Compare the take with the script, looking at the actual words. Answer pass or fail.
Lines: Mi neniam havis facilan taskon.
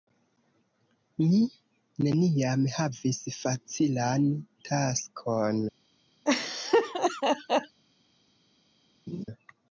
pass